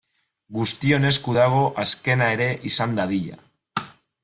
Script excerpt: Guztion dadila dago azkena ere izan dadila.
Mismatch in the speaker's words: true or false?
true